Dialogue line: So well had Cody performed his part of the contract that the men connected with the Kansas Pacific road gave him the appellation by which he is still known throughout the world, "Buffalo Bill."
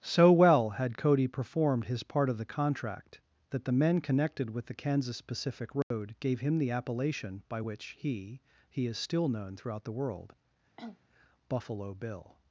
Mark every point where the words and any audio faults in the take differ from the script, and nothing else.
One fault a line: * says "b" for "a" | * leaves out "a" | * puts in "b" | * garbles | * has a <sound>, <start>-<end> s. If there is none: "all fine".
* has a dropout, 5.8-5.9 s
* puts in "he"
* has a cough, 10.8-11.0 s